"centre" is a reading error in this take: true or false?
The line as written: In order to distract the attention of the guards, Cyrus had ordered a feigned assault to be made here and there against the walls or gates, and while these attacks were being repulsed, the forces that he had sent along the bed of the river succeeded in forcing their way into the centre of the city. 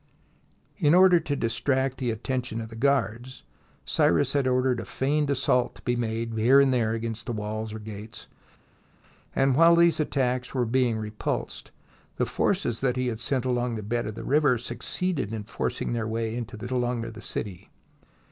true